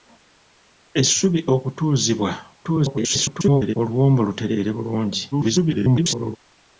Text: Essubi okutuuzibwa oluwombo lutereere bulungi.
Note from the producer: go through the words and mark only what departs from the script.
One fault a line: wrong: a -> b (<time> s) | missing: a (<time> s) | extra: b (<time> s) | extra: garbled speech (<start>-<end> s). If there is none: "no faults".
extra: garbled speech (2.6-3.8 s)
extra: garbled speech (5.3-6.4 s)